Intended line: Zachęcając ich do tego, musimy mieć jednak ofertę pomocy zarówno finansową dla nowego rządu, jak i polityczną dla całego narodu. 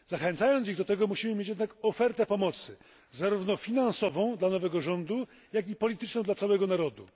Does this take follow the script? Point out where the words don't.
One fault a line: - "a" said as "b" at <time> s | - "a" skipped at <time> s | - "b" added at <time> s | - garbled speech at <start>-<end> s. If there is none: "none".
none